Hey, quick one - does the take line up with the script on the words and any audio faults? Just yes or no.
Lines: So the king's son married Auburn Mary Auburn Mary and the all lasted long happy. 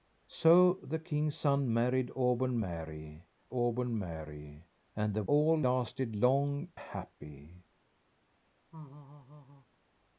no